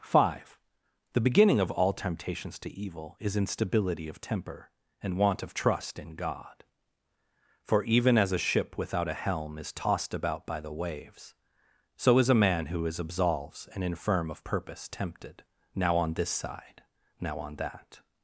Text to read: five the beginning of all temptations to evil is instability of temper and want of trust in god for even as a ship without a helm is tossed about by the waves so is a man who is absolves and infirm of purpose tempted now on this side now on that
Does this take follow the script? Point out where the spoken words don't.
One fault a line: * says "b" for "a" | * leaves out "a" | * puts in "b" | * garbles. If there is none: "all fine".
all fine